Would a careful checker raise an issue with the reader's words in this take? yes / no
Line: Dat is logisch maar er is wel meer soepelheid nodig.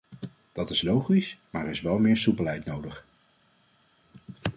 no